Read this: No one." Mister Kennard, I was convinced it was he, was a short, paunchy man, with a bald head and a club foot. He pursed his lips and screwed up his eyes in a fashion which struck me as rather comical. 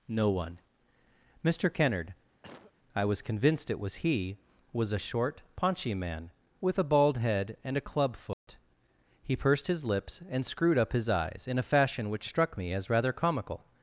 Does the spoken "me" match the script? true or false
true